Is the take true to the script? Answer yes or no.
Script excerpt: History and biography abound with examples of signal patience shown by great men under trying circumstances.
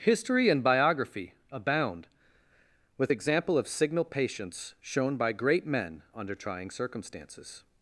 no